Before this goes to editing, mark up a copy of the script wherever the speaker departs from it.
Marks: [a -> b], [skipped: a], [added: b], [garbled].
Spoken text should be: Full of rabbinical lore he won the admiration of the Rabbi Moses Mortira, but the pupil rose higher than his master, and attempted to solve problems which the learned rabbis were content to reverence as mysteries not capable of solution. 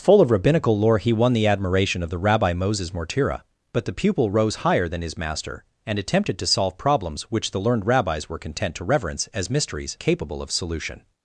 Full of rabbinical lore he won the admiration of the Rabbi Moses Mortira, but the pupil rose higher than his master, and attempted to solve problems which the learned rabbis were content to reverence as mysteries [skipped: not] capable of solution.